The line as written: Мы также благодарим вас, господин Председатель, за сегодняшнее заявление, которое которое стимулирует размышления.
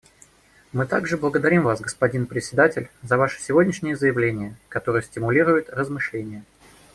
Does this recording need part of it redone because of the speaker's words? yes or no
yes